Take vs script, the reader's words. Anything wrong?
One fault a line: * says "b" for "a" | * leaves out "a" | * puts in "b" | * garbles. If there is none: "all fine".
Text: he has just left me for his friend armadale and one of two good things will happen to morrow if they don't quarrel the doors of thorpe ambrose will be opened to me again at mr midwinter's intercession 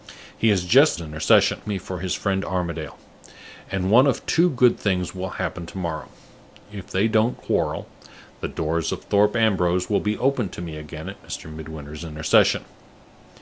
* says "intercession" for "left"